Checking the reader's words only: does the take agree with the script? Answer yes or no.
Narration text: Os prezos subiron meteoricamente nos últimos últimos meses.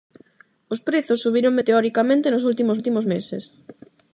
yes